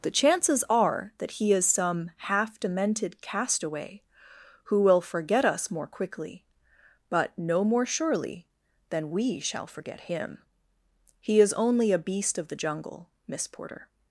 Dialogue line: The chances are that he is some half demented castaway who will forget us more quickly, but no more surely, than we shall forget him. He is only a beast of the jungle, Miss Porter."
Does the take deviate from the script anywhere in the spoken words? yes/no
no